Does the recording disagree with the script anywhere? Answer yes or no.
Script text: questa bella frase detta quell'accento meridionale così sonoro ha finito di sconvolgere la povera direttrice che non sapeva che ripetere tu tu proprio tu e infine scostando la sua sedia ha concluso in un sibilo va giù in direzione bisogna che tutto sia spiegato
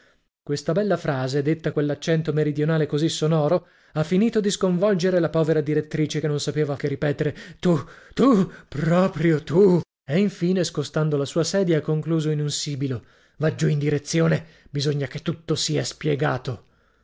no